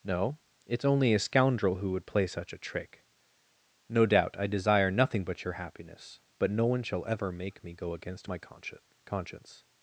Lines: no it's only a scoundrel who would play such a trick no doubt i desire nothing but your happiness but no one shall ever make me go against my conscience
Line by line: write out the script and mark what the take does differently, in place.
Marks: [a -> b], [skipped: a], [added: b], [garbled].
no it's only a scoundrel who would play such a trick no doubt i desire nothing but your happiness but no one shall ever make me go against my conscience